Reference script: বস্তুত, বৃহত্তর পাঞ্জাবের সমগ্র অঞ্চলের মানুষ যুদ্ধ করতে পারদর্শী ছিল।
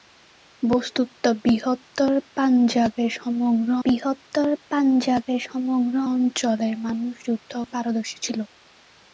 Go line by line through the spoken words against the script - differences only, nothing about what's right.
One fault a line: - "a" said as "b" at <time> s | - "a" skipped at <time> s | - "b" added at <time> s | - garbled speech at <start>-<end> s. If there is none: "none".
- "বৃহত্তর পাঞ্জাবের সমগ্র" added at 3.8 s
- "করতে" skipped at 7.5 s